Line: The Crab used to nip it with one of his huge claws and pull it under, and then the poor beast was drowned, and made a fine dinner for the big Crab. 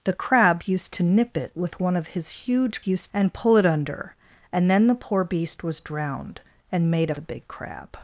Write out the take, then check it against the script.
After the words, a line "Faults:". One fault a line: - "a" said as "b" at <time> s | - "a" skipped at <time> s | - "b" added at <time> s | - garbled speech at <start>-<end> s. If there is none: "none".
The Crab used to nip it with one of his huge used and pull it under, and then the poor beast was drowned, and made a the big Crab.
Faults:
- "claws" said as "used" at 2.8 s
- "fine dinner for" skipped at 7.1 s